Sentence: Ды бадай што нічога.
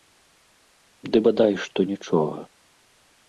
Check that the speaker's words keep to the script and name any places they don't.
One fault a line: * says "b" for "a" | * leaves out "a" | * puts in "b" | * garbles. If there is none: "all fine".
all fine